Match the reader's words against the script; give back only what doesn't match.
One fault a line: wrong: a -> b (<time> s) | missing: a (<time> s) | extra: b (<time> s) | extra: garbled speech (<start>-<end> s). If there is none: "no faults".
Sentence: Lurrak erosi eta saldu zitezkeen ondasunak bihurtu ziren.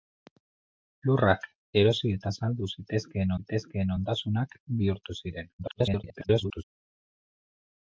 extra: zitezkeen (3.4 s)
extra: garbled speech (5.6-6.6 s)